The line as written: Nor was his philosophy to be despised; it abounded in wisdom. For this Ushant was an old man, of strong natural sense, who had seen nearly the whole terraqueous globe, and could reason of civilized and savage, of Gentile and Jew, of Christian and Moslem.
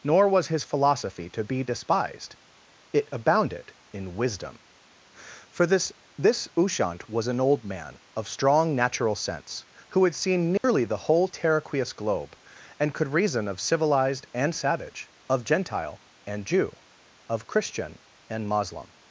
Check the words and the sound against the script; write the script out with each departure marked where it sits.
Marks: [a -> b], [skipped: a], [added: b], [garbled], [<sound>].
Nor was his philosophy to be despised; it abounded in wisdom. For this [added: this] Ushant was an old man, of strong natural sense, who had seen nearly [dropout] the whole terraqueous globe, and could reason of civilized and savage, of Gentile and Jew, of Christian and Moslem.